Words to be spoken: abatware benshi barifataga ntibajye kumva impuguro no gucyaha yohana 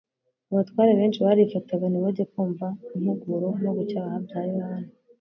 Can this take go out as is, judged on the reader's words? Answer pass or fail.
fail